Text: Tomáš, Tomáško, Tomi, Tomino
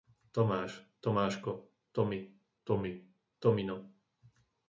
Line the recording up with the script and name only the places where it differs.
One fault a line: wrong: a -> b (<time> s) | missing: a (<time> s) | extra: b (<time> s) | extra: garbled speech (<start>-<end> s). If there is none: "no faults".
extra: Tomi (2.6 s)